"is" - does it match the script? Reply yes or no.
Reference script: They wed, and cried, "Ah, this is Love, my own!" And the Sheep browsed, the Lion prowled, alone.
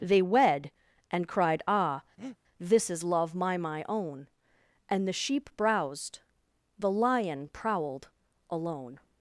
yes